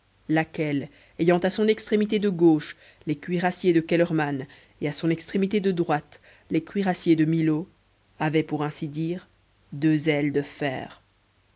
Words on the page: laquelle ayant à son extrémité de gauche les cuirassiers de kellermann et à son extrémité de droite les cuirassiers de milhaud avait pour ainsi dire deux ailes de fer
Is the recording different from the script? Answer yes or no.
no